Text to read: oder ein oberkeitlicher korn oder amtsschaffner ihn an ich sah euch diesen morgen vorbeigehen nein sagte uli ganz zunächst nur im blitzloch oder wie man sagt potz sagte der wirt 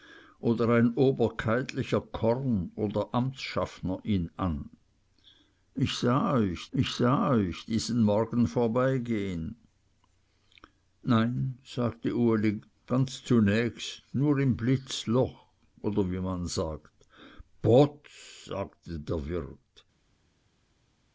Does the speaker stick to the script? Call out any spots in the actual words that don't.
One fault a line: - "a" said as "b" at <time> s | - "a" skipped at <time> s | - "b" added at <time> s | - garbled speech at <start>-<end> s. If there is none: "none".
- "ich sah euch" added at 6.7 s